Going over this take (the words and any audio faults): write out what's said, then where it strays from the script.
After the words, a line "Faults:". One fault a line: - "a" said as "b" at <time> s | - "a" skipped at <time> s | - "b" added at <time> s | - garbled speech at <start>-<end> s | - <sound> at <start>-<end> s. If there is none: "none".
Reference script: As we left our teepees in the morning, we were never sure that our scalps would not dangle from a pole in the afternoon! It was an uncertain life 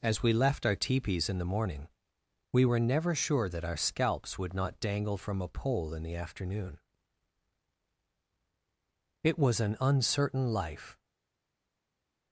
As we left our teepees in the morning, we were never sure that our scalps would not dangle from a pole in the afternoon! It was an uncertain life
Faults:
none